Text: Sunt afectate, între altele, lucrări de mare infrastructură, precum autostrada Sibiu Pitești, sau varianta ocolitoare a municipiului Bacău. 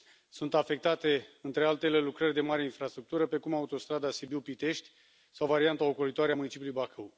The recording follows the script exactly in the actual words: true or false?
true